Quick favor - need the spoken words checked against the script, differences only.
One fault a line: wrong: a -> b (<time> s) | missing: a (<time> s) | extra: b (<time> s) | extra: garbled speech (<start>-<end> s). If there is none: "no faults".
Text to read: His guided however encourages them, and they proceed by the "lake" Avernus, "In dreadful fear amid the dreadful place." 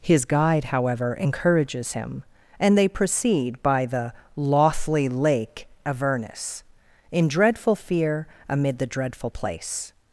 wrong: guided -> guide (0.2 s)
wrong: them -> him (1.9 s)
extra: lothly (4.4 s)